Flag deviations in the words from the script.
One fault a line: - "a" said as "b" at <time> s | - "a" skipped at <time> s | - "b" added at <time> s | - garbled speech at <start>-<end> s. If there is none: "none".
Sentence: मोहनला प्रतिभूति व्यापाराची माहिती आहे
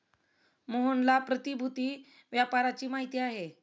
none